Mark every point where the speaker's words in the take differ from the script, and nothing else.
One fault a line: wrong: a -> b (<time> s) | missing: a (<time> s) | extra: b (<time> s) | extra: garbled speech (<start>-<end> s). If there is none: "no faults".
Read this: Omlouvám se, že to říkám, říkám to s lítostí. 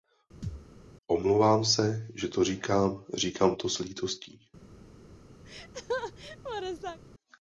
no faults